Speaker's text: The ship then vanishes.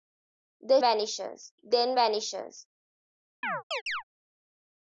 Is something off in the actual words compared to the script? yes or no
yes